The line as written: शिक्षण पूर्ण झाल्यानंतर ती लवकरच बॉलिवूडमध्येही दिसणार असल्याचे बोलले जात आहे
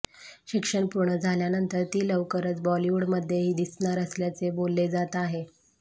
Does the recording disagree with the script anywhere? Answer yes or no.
no